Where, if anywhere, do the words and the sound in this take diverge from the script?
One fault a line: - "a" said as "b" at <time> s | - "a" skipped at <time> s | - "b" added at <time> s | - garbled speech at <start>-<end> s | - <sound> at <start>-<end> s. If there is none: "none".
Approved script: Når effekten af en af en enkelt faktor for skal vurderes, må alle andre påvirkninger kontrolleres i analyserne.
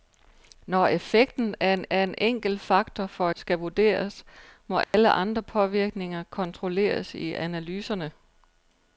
- dropout at 4.8-4.9 s